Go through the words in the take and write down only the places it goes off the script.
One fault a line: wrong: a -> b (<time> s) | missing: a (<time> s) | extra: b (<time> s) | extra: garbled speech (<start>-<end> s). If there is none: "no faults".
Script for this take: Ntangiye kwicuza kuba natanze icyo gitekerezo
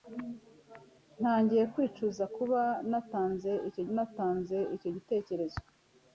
extra: natanze icyo (3.9 s)